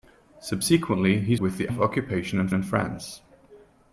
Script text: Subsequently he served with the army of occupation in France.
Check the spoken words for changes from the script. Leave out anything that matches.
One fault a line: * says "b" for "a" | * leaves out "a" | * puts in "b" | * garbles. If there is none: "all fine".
* leaves out "served"
* leaves out "army"
* puts in "in"